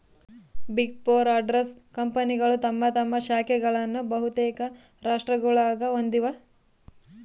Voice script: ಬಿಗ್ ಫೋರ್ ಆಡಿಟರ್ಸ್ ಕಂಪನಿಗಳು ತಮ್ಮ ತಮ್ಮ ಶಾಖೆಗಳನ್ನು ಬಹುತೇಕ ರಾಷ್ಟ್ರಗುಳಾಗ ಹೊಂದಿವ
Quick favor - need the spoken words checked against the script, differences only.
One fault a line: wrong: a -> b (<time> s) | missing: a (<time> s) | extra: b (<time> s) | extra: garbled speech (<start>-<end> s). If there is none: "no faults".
no faults